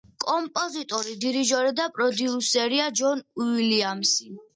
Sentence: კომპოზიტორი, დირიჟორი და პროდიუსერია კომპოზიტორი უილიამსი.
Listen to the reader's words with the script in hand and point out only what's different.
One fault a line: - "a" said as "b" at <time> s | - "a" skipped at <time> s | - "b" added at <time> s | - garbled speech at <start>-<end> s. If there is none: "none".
- "კომპოზიტორი" said as "ჯონ" at 3.0 s